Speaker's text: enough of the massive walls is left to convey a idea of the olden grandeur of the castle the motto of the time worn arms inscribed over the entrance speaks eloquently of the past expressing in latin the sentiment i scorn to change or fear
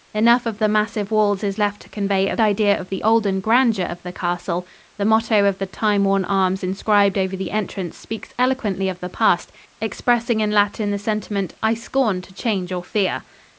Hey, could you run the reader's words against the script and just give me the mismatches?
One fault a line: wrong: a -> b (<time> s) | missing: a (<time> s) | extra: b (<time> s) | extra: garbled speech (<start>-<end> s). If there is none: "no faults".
no faults